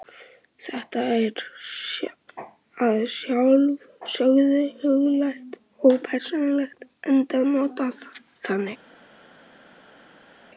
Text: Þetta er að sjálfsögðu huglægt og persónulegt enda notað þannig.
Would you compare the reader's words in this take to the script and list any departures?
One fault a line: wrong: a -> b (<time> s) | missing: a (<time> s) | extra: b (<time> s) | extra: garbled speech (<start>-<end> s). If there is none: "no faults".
no faults